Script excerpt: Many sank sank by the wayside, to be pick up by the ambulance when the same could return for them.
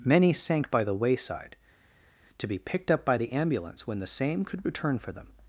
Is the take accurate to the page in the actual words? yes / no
no